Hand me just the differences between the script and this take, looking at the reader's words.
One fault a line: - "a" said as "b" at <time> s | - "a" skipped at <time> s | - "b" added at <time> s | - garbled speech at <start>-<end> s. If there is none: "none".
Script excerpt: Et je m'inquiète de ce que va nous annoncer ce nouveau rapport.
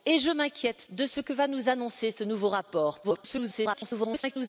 - garbled speech at 3.0-4.5 s